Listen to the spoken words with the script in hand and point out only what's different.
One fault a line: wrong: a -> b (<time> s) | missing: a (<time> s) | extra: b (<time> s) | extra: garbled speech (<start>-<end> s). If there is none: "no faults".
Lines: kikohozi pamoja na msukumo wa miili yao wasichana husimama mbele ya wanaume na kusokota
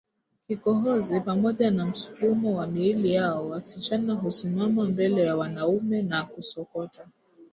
no faults